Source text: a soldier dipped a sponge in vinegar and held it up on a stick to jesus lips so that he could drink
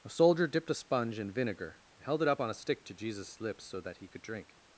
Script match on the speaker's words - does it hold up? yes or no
yes